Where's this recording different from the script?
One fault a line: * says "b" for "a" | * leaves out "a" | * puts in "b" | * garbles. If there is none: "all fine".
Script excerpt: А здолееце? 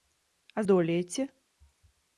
all fine